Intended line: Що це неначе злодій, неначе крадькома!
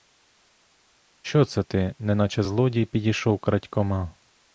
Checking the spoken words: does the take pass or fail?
fail